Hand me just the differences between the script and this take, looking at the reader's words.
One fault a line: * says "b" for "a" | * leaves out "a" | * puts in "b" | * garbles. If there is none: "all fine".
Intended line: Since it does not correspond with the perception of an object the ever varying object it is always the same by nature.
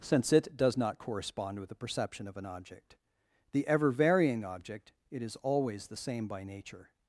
all fine